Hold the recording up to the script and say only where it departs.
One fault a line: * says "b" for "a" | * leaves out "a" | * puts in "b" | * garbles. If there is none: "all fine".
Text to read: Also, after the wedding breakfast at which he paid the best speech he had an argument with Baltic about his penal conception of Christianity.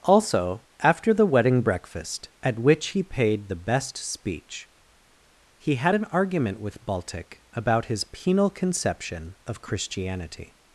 all fine